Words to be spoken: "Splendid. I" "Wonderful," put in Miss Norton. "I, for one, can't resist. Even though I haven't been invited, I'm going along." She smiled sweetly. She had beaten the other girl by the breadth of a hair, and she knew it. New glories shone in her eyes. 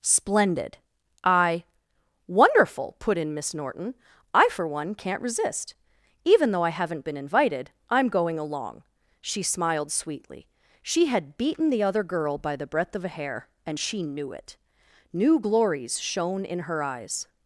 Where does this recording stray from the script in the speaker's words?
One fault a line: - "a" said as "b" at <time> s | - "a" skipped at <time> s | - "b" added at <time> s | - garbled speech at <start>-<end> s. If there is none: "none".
none